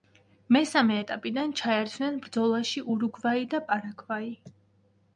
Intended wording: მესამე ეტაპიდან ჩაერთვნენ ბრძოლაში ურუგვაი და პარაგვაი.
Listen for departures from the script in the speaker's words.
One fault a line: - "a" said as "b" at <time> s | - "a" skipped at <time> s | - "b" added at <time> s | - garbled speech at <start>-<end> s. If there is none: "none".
none